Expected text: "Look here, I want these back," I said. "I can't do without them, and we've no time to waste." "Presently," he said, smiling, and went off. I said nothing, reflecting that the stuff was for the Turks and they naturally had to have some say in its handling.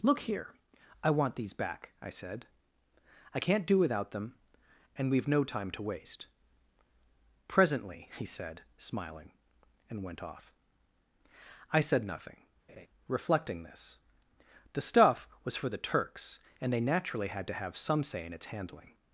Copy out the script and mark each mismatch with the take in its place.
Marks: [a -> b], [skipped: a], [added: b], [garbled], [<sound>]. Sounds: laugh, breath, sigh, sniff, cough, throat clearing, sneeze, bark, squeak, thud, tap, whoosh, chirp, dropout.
"Look here, I want these back," I said. "I can't do without them, and we've no time to waste." "Presently," he said, smiling, and went off. I said nothing, [laugh] reflecting [that -> this] the stuff was for the Turks and they naturally had to have some say in its handling.